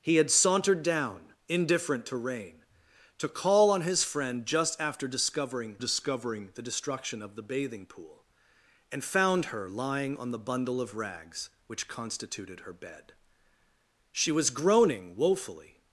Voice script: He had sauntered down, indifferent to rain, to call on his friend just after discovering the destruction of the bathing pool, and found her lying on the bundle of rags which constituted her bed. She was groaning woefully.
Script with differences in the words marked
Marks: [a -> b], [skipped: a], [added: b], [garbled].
He had sauntered down, indifferent to rain, to call on his friend just after discovering [added: discovering] the destruction of the bathing pool, and found her lying on the bundle of rags which constituted her bed. She was groaning woefully.